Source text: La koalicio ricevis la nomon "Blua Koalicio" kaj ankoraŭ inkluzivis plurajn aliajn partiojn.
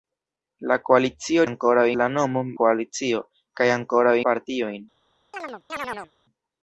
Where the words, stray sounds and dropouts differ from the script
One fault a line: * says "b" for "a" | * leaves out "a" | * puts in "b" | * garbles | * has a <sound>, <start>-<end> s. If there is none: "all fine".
* says "ankoraŭ" for "ricevis"
* leaves out "Blua"
* leaves out "inkluzivis plurajn aliajn"
* has a chirp, 5.3-6.1 s